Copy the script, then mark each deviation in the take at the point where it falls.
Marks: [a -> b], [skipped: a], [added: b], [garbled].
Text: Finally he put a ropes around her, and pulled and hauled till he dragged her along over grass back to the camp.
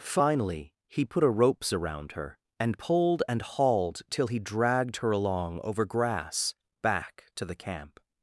Finally he put a ropes around her, and pulled and hauled till he dragged her along over grass back to the camp.